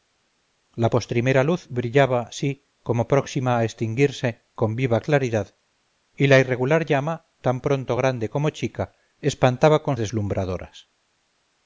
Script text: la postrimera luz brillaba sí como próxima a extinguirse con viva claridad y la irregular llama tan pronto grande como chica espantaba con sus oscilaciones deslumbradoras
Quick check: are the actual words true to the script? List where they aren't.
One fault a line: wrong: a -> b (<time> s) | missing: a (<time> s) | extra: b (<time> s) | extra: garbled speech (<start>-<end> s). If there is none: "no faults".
missing: sus oscilaciones (10.0 s)